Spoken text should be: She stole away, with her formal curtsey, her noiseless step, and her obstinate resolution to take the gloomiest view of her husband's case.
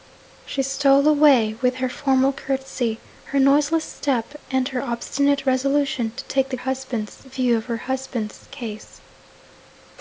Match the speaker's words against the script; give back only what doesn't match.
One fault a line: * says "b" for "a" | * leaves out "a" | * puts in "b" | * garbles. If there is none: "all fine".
* says "husband's" for "gloomiest"